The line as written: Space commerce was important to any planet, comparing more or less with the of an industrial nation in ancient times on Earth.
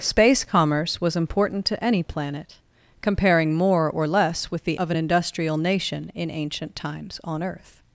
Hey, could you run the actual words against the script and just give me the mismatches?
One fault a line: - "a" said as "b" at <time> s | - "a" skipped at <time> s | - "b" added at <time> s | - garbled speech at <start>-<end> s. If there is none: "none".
none